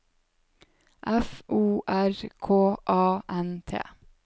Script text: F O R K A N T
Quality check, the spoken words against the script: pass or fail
pass